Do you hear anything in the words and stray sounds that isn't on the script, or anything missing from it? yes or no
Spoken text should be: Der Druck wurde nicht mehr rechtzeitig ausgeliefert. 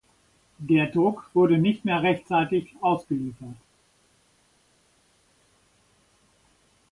no